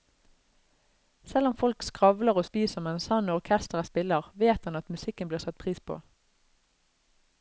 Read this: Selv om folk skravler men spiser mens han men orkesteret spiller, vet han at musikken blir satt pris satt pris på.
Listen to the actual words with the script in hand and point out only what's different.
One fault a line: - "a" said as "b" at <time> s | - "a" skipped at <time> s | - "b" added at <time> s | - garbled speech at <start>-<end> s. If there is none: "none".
- "men" said as "og" at 2.3 s
- "men" said as "og" at 3.3 s
- "satt pris" skipped at 5.8 s